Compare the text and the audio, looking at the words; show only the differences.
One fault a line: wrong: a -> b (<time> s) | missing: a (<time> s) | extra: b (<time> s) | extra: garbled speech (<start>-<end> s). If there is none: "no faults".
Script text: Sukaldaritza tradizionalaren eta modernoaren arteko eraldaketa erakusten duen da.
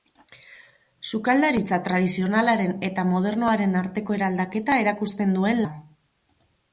no faults